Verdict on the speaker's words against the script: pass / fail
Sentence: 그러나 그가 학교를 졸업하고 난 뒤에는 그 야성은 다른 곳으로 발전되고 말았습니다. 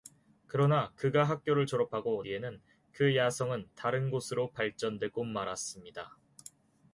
fail